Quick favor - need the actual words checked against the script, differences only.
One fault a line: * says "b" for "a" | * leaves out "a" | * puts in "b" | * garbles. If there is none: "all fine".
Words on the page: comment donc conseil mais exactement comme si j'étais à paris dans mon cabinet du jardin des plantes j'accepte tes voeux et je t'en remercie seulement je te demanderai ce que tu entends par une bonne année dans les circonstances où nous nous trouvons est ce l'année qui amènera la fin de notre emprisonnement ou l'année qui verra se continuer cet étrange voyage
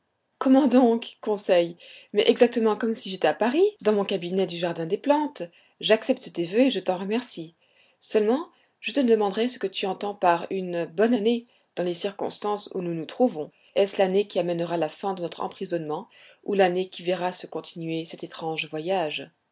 all fine